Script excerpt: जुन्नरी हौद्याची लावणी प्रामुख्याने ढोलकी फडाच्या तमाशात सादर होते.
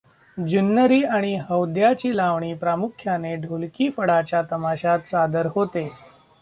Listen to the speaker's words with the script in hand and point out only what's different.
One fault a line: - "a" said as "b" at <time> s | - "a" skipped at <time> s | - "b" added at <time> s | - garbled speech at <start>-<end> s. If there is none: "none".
- "आणि" added at 1.1 s